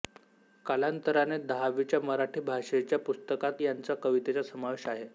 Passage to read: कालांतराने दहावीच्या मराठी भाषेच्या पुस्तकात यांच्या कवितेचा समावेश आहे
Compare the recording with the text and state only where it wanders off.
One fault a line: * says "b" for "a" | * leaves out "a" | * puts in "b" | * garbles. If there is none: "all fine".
all fine